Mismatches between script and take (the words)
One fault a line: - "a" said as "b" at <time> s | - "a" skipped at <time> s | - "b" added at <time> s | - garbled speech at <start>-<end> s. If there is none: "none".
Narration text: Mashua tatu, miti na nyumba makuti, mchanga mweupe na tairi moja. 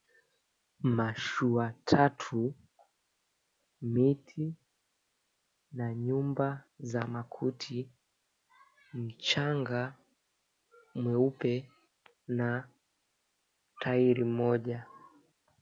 - "za" added at 6.8 s